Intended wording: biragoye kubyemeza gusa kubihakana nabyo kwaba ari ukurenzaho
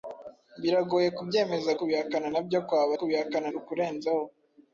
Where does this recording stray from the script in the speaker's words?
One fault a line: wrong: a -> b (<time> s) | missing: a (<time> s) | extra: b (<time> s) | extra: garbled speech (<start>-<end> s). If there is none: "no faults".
missing: gusa (1.7 s)
wrong: ari -> kubihakana (3.0 s)